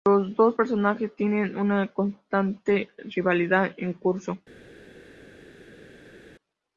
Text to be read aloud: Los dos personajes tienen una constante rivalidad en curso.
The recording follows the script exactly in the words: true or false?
true